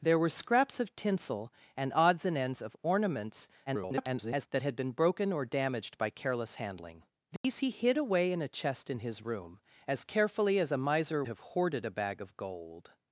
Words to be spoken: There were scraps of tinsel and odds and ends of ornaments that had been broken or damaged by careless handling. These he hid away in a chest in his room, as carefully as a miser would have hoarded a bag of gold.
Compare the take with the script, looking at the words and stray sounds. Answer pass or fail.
fail